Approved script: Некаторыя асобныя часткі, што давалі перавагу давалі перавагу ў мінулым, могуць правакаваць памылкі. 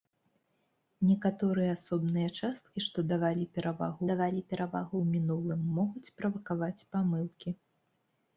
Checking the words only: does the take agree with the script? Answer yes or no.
yes